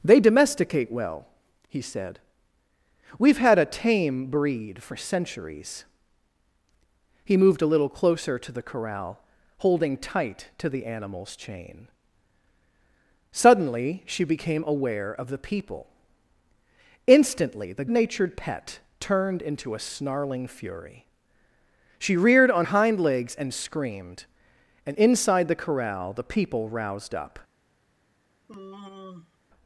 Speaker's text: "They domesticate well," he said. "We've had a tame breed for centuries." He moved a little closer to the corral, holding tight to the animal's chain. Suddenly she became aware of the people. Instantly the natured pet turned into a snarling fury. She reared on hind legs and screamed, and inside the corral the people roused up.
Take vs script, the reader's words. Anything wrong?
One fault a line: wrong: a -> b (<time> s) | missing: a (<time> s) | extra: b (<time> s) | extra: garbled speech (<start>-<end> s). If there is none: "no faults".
no faults